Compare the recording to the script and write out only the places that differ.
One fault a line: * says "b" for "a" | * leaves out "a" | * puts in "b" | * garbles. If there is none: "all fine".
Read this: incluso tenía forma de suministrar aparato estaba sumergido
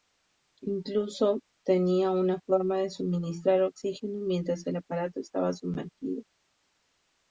* puts in "una"
* puts in "oxígeno mientras el"